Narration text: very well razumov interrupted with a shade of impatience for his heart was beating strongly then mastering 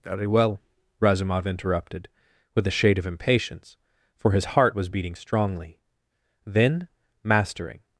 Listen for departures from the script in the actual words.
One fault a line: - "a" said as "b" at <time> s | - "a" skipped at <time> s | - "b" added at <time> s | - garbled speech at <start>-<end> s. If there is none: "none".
none